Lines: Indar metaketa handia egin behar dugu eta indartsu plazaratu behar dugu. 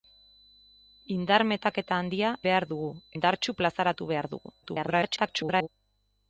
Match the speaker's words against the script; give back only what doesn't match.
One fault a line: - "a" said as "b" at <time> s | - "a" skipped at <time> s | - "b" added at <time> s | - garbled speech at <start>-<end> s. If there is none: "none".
- "egin" skipped at 2.3 s
- "eta" skipped at 2.9 s
- garbled speech at 4.6-5.7 s